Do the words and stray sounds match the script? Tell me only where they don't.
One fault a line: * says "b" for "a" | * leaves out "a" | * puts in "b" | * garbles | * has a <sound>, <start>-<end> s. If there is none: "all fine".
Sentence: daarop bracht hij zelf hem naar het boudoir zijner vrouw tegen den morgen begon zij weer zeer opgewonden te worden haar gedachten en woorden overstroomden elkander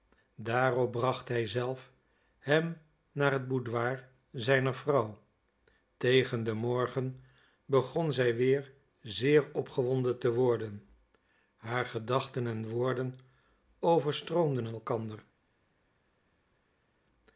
all fine